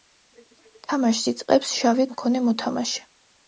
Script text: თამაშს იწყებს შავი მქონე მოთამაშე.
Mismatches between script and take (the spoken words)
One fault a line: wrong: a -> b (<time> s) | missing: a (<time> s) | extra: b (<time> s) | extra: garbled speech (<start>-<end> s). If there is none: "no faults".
no faults